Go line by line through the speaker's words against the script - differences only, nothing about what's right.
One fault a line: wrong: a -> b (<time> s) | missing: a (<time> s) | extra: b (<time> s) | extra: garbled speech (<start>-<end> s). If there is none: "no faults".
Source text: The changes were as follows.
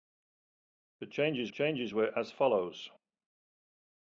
extra: changes (1.5 s)